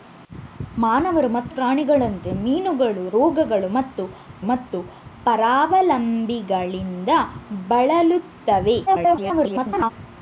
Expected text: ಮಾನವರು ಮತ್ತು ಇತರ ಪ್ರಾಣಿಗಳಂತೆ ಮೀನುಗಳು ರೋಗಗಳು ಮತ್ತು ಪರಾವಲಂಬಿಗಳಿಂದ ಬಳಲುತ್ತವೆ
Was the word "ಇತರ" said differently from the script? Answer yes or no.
yes